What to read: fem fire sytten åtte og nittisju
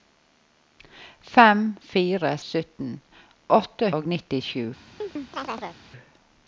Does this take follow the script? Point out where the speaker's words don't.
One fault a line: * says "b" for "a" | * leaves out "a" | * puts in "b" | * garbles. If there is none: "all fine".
all fine